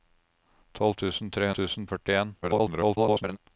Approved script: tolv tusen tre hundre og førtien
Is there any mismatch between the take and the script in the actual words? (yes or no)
yes